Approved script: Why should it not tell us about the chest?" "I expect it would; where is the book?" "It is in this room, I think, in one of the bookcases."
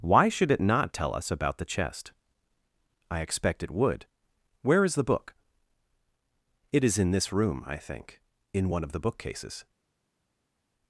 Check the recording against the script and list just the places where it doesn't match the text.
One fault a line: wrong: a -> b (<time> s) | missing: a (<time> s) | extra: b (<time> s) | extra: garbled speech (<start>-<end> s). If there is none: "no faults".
no faults